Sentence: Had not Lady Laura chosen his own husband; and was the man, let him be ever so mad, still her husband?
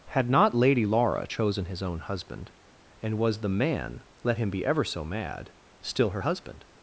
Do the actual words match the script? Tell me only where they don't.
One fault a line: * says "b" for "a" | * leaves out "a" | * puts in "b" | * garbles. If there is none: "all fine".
all fine